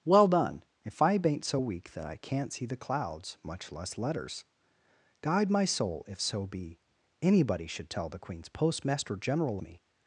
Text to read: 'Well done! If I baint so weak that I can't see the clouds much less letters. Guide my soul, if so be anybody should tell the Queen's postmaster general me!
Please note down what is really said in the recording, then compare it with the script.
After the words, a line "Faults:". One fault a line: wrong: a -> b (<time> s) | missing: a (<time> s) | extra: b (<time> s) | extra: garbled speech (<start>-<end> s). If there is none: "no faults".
'Well done! If I baint so weak that I can't see the clouds much less letters. Guide my soul, if so be anybody should tell the Queen's postmaster general me!
Faults:
no faults